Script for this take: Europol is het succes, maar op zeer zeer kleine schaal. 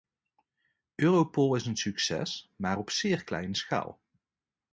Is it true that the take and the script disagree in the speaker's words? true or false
true